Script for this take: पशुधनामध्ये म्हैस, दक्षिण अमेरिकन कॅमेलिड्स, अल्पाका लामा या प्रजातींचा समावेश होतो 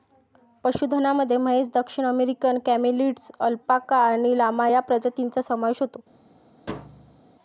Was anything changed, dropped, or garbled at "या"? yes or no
no